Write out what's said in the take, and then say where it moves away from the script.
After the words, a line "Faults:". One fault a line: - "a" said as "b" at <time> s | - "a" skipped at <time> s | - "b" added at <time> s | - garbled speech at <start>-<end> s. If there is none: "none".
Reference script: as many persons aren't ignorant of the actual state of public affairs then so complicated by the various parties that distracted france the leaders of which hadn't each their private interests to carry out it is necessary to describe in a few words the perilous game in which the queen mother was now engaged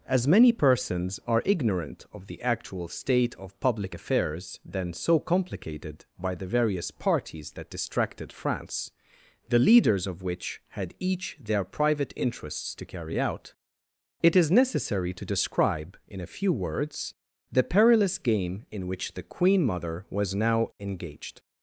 as many persons are ignorant of the actual state of public affairs then so complicated by the various parties that distracted france the leaders of which had each their private interests to carry out it is necessary to describe in a few words the perilous game in which the queen mother was now engaged
Faults:
- "aren't" said as "are" at 1.3 s
- "hadn't" said as "had" at 10.7 s